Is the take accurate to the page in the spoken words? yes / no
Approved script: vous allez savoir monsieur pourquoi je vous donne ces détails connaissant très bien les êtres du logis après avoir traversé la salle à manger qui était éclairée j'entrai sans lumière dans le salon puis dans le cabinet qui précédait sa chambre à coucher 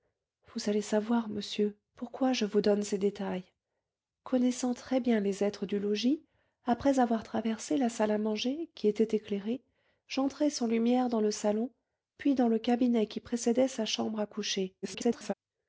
no